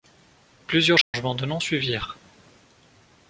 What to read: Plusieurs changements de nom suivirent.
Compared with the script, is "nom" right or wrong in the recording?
right